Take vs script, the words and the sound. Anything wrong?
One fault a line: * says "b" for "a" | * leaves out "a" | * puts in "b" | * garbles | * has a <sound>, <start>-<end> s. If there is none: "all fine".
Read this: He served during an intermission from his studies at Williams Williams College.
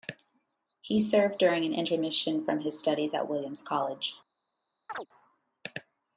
* leaves out "Williams"
* has a chirp, 4.9-5.1 s